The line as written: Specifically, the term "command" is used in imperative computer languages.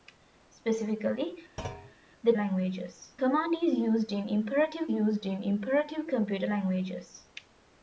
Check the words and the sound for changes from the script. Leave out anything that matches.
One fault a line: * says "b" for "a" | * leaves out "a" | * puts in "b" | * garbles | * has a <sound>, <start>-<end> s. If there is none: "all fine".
* has a thud, 1.6-1.9 s
* says "languages" for "term"
* puts in "used in imperative"